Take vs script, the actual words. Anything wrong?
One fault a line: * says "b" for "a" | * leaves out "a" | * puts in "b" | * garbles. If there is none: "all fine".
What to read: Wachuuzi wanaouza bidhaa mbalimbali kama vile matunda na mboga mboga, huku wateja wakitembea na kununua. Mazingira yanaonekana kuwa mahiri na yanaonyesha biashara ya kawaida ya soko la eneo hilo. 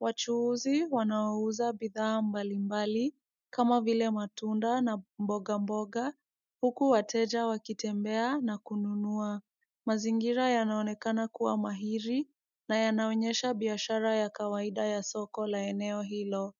all fine